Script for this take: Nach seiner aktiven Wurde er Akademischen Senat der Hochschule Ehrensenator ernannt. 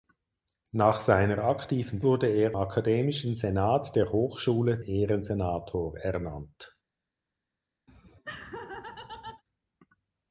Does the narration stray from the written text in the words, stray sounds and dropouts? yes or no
yes